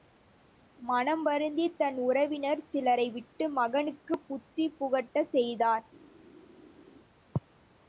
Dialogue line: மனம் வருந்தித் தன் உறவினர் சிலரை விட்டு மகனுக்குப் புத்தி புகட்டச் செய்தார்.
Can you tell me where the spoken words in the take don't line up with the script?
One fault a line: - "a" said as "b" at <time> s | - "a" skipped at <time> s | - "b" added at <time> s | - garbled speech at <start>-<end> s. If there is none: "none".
none